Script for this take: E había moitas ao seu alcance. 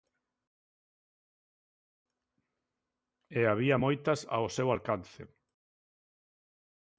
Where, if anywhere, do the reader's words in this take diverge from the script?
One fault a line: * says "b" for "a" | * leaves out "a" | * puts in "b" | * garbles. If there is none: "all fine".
all fine